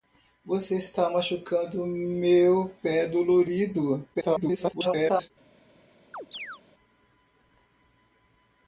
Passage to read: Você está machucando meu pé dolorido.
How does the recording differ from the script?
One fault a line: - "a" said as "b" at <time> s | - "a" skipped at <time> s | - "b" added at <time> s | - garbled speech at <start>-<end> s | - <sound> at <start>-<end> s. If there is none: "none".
- garbled speech at 4.1-5.3 s
- chirp at 6.1-6.6 s